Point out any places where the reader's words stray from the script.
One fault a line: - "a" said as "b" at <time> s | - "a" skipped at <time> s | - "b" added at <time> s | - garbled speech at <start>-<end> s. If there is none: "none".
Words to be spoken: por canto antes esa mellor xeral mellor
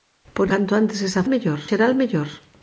none